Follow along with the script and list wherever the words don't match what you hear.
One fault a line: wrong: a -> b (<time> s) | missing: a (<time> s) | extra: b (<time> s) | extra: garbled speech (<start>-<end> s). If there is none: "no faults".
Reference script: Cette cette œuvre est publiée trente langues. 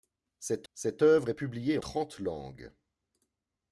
no faults